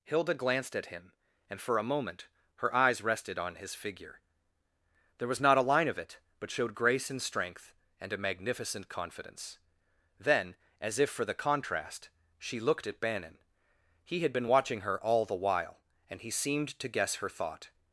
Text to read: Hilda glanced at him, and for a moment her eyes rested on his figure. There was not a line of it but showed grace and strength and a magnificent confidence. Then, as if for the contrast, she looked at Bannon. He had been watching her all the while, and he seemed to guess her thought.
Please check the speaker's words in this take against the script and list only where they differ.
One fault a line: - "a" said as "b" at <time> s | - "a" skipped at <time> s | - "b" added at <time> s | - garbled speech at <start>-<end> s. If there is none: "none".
none